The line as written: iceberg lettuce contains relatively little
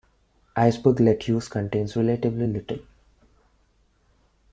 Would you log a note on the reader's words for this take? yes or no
no